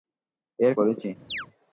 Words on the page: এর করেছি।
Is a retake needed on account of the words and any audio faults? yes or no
yes